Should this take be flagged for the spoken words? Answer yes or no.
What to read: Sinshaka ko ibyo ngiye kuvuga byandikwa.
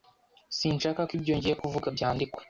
no